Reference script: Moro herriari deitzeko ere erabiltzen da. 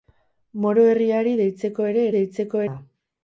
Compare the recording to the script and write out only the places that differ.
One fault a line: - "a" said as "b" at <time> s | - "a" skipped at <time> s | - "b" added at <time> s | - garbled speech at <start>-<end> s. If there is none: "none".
- "erabiltzen" said as "deitzeko" at 2.2 s